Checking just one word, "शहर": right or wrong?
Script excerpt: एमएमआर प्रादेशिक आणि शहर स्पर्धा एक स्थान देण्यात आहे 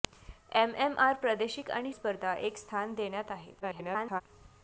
wrong